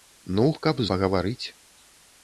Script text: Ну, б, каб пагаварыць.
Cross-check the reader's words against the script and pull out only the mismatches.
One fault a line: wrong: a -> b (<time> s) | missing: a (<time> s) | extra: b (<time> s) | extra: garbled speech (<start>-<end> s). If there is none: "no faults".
no faults